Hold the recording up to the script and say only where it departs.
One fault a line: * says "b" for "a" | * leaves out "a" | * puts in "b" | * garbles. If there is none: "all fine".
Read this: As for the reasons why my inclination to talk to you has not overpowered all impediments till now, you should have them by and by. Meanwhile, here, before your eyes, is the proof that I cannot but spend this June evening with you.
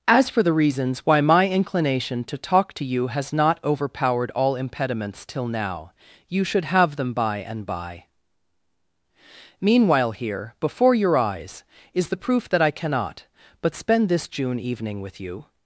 all fine